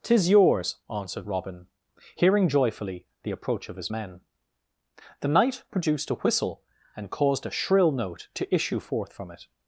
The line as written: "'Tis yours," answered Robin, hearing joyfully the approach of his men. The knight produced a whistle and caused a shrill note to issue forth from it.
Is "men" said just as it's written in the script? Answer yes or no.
yes